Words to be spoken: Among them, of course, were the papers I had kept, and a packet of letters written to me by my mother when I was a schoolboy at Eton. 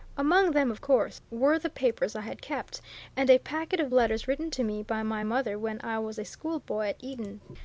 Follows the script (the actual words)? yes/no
yes